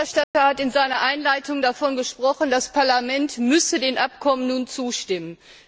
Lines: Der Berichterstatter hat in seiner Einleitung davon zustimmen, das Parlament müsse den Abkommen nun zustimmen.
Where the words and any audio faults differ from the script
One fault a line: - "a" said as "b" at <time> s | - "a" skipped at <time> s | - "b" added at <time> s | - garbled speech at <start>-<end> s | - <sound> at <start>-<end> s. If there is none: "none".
- dropout at 0.2-0.3 s
- "zustimmen" said as "gesprochen" at 2.0 s